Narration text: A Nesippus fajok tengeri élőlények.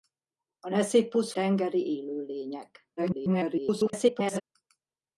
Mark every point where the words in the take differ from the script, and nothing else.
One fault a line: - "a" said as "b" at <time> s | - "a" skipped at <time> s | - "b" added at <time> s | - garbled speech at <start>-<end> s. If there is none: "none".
- "fajok" skipped at 1.3 s
- garbled speech at 3.0-4.4 s